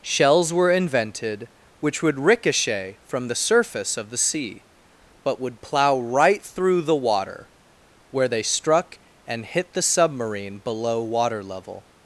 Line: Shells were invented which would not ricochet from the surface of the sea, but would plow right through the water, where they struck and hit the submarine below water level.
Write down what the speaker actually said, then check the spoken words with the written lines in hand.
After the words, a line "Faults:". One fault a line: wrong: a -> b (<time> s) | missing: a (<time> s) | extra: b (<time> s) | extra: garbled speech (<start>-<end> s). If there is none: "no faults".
Shells were invented which would ricochet from the surface of the sea, but would plow right through the water, where they struck and hit the submarine below water level.
Faults:
missing: not (2.2 s)